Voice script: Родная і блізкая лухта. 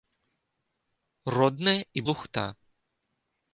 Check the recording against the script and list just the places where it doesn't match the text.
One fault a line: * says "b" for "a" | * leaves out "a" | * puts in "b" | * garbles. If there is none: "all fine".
* leaves out "блізкая"